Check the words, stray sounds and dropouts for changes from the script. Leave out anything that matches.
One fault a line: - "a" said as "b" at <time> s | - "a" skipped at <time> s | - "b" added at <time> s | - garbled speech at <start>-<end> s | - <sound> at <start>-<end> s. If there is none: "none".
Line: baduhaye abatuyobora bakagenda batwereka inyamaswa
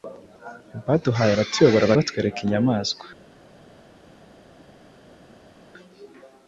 - "bakagenda" skipped at 1.9 s